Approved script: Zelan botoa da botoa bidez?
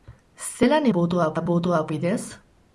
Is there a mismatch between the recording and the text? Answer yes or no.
no